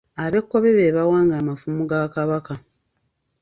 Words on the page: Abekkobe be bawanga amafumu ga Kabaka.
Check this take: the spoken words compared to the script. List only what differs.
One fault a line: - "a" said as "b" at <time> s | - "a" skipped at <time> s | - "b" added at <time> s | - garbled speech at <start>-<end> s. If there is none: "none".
none